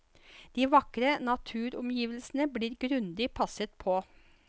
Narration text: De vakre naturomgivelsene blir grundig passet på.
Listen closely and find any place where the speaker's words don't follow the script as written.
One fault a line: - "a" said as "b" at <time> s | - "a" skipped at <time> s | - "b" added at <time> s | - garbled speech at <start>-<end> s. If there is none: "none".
none